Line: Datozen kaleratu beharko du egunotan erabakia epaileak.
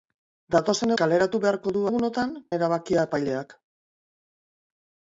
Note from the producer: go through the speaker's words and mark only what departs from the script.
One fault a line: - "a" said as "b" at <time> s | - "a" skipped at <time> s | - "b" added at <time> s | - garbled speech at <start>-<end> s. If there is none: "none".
none